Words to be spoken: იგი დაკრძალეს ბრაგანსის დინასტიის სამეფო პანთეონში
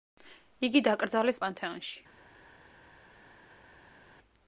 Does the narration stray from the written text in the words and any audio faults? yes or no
yes